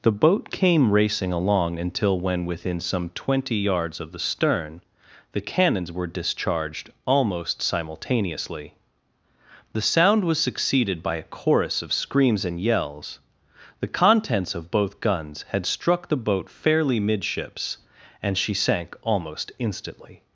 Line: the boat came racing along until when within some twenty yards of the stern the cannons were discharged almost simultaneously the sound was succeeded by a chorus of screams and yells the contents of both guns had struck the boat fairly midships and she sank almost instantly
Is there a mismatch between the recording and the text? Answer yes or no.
no